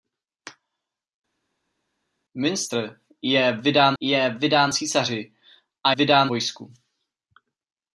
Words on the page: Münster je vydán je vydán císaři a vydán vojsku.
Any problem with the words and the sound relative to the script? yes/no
no